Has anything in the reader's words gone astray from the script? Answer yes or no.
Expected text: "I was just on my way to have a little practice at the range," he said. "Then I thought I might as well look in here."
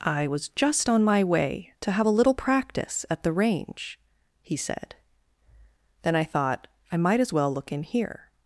no